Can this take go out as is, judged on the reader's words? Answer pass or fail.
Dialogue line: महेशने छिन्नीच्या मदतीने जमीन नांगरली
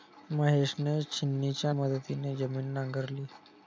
pass